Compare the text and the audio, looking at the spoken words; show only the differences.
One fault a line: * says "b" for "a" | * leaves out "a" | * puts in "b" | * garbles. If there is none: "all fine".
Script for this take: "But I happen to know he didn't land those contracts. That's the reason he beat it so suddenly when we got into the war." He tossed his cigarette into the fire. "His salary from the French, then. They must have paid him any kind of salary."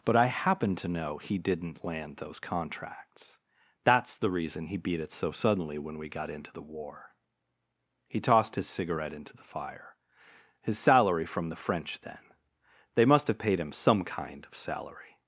* says "some" for "any"